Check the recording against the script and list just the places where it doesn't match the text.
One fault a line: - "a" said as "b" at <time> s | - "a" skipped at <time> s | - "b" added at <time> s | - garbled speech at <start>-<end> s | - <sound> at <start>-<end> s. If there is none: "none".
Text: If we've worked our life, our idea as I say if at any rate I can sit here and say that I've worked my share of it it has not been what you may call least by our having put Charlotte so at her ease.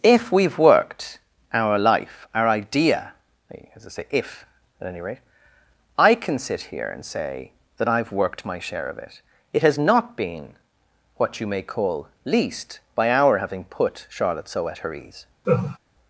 - laugh at 15.4-15.8 s